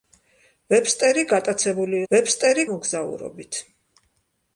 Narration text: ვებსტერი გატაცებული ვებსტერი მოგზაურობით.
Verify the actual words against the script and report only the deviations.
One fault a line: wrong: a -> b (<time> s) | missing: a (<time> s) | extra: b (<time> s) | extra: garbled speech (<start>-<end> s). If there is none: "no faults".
no faults